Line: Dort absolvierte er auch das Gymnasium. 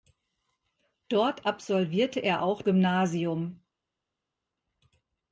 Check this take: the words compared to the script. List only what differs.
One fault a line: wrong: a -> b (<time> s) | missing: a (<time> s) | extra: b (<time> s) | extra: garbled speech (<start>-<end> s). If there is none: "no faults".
missing: das (2.6 s)